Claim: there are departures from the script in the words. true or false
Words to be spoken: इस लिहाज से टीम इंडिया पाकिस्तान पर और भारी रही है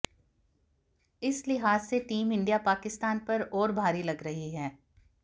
true